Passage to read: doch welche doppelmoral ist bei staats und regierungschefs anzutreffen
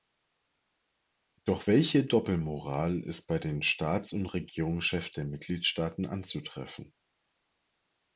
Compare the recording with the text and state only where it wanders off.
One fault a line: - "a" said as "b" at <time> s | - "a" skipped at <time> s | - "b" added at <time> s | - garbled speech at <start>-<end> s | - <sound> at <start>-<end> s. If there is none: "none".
- "den" added at 3.4 s
- "der mitgliedstaaten" added at 5.1 s